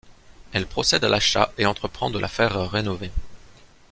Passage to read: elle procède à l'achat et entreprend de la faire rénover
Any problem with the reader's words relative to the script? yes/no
no